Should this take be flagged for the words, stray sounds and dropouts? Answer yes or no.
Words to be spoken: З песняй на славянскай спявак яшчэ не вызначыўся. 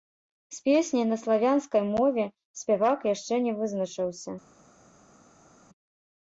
yes